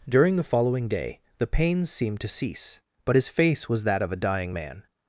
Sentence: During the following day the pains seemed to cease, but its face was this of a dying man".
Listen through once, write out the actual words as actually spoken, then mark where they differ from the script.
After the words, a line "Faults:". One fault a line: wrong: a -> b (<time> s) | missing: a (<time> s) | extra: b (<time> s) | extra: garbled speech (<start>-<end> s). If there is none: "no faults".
During the following day the pains seemed to cease, but his face was that of a dying man".
Faults:
wrong: its -> his (3.1 s)
wrong: this -> that (3.8 s)